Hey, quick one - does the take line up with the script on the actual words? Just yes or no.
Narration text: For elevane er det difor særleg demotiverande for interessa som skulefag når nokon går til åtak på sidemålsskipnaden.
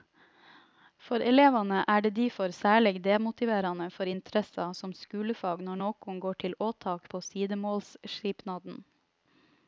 yes